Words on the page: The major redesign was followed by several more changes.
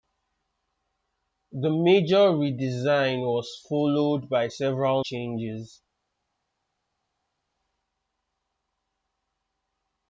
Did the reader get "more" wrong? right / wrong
wrong